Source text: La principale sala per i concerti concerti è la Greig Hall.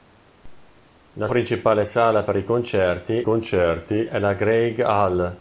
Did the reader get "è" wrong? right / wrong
right